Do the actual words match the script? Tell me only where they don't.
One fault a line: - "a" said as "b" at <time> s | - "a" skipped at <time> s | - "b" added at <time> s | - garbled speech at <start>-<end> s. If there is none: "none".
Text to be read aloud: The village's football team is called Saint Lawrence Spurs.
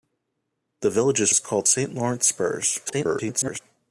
- "football team" skipped at 1.3 s
- garbled speech at 2.8-3.6 s